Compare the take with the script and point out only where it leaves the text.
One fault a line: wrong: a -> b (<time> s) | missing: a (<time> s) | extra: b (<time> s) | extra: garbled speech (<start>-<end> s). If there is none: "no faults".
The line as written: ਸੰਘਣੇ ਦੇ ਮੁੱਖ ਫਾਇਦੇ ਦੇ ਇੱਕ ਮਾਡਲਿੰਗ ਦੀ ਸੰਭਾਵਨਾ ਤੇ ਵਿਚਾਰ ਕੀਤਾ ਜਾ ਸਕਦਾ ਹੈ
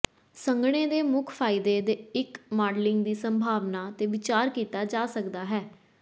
no faults